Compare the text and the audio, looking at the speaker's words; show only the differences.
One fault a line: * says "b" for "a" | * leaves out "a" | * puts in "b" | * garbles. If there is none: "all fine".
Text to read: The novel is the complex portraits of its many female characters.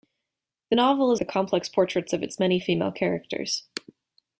all fine